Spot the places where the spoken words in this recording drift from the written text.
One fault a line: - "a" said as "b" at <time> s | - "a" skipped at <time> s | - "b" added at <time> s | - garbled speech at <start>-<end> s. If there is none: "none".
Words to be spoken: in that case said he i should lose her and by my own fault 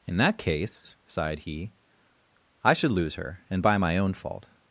- "said" said as "sighed" at 1.1 s